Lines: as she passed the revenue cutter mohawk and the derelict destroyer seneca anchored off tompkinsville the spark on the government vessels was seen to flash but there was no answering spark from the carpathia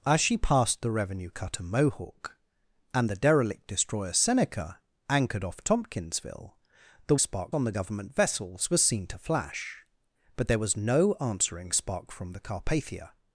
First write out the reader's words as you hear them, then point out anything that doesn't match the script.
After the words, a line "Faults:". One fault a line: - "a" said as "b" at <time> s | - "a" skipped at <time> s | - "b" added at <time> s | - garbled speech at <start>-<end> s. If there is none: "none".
as she passed the revenue cutter mohawk and the derelict destroyer seneca anchored off tompkinsville the spark on the government vessels was seen to flash but there was no answering spark from the carpathia
Faults:
none